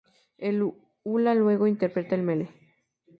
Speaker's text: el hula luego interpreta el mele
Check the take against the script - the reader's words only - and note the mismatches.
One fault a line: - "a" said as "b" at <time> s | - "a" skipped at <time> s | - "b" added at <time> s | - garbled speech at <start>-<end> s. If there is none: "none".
none